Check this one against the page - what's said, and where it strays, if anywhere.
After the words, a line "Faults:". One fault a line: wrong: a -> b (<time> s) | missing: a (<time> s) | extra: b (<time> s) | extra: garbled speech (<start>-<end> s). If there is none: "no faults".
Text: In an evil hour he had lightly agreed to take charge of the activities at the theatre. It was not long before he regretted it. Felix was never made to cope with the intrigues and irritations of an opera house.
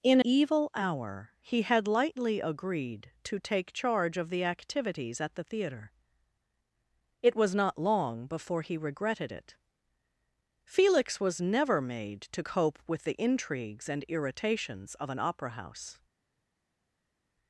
In evil hour he had lightly agreed to take charge of the activities at the theatre. It was not long before he regretted it. Felix was never made to cope with the intrigues and irritations of an opera house.
Faults:
missing: an (0.2 s)